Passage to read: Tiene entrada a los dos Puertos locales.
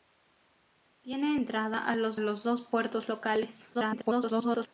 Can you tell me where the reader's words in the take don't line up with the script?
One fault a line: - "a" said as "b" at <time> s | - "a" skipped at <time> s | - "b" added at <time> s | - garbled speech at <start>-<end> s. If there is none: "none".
- "los" added at 2.2 s
- garbled speech at 3.7-4.7 s